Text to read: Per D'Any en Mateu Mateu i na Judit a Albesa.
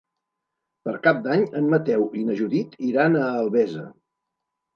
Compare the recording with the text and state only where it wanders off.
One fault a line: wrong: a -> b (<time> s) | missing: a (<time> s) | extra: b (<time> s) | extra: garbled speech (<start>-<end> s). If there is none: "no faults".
extra: Cap (1.0 s)
missing: Mateu (2.1 s)
extra: iran (2.9 s)